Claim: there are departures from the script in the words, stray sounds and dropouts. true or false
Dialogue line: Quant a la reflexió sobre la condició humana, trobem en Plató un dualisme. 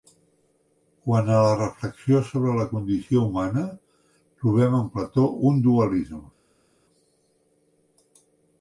false